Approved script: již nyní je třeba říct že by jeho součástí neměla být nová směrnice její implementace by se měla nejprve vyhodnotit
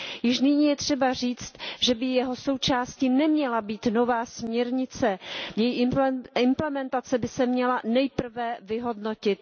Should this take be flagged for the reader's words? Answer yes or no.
no